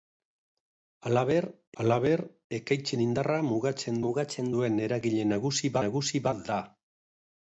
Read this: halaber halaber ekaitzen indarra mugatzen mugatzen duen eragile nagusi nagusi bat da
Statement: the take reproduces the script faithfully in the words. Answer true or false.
true